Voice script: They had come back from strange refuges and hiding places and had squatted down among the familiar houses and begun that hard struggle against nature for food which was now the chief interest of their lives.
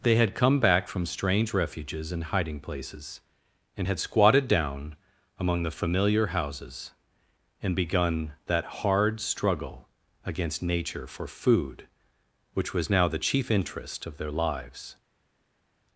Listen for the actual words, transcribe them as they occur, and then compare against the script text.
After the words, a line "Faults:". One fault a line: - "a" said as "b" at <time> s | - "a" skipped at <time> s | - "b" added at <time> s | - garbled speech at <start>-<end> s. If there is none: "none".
They had come back from strange refuges and hiding places and had squatted down among the familiar houses and begun that hard struggle against nature for food which was now the chief interest of their lives.
Faults:
none